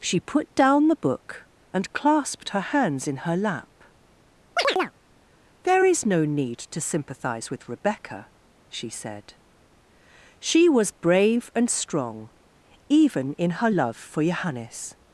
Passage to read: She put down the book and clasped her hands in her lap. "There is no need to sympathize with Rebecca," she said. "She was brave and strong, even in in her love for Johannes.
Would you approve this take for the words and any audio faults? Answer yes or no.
no